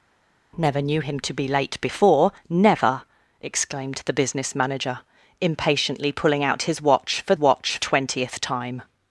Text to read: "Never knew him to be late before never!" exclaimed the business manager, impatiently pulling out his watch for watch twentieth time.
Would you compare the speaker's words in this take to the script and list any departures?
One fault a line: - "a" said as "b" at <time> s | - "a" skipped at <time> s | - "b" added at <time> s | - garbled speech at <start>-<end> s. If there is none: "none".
none